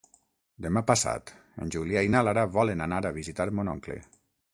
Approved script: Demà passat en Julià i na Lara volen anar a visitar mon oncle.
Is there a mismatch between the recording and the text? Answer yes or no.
no